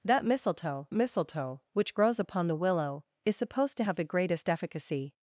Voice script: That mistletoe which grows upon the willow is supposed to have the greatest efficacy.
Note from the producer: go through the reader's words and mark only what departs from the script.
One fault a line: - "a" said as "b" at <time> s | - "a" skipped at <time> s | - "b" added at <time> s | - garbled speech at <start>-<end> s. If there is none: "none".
- "mistletoe" added at 0.9 s